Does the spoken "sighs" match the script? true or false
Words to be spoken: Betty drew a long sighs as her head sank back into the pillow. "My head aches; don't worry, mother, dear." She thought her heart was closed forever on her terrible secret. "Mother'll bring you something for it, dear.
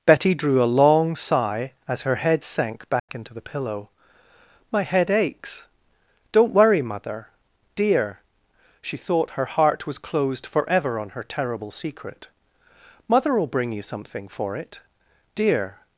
false